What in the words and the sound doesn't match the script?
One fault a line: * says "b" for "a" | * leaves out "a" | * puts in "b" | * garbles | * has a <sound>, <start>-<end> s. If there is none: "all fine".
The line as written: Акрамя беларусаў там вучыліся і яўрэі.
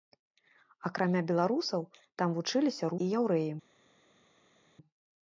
all fine